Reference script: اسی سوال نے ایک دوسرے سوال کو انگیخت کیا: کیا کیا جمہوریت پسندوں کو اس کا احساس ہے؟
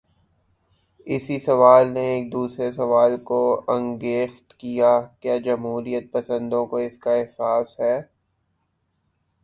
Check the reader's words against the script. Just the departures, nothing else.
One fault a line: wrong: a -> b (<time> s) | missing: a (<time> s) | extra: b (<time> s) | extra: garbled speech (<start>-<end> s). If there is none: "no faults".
missing: کیا (5.4 s)